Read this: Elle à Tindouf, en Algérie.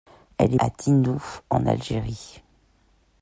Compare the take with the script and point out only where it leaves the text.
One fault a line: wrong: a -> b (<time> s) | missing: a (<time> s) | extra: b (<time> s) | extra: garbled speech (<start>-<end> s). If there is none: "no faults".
no faults